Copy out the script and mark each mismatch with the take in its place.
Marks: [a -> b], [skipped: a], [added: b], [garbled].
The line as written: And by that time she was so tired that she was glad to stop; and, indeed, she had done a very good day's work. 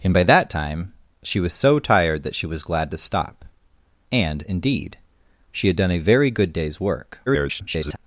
And by that time she was so tired that she was glad to stop; and, indeed, she had done a very good day's work. [garbled]